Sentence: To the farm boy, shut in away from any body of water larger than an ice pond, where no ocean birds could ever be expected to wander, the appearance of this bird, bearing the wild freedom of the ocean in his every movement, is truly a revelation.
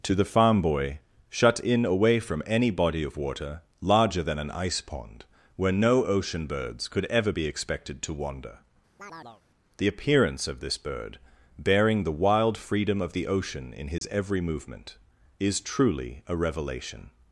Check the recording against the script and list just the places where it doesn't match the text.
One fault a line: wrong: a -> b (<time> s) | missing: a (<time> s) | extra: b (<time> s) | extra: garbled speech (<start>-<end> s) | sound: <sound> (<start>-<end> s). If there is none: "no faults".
sound: chirp (9.0-9.4 s)
sound: dropout (14.0-14.0 s)